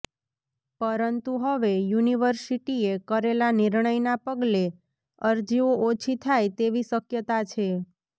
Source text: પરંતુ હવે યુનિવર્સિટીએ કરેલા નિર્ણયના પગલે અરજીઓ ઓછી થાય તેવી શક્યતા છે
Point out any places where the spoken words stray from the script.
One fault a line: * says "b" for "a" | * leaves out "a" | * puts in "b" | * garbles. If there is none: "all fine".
all fine